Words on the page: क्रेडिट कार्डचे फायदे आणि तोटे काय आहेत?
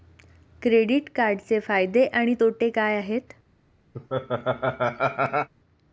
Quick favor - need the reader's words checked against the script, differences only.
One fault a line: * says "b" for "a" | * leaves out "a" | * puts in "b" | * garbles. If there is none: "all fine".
all fine